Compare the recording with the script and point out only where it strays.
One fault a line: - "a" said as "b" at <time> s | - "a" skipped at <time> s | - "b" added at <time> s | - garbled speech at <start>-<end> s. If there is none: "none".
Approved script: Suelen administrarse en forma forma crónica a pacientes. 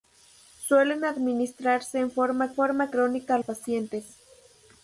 none